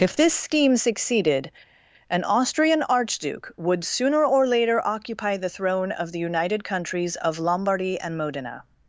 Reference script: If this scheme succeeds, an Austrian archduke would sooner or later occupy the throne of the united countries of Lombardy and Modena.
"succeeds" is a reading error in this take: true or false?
true